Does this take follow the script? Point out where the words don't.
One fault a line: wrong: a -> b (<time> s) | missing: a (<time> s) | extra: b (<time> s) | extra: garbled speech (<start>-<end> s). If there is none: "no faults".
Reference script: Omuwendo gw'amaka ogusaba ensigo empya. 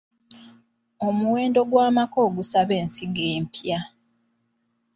no faults